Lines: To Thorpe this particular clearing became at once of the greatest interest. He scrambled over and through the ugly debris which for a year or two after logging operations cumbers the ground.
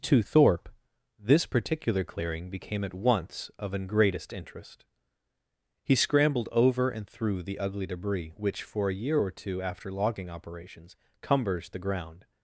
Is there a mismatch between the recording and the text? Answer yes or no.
yes